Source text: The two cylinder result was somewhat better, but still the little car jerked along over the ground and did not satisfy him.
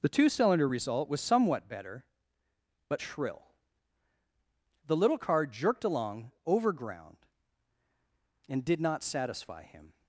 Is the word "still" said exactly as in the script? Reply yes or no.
no